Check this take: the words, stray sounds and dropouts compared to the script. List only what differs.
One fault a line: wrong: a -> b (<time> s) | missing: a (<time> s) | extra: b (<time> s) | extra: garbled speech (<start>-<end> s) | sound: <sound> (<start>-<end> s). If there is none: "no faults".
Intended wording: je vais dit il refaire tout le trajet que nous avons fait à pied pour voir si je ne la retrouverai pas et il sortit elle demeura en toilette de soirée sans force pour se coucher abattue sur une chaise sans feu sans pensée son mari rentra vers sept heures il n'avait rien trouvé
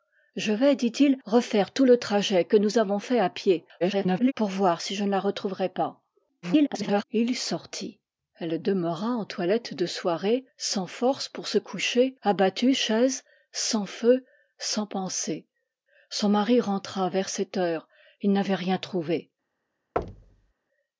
extra: garbled speech (3.8-4.3 s)
extra: garbled speech (6.4-7.0 s)
missing: sur une (12.7 s)
sound: thud (20.0-20.5 s)